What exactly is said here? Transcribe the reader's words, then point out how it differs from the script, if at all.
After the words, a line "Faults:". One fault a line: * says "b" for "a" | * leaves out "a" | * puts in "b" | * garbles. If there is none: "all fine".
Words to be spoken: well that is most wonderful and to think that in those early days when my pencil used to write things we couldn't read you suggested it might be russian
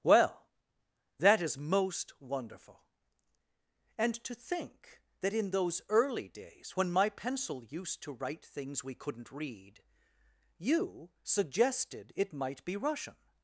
well that is most wonderful and to think that in those early days when my pencil used to write things we couldn't read you suggested it might be russian
Faults:
all fine